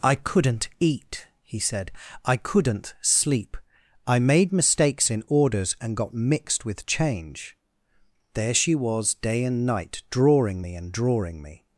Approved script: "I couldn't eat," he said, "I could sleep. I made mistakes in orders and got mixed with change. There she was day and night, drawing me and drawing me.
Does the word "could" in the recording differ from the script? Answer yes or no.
yes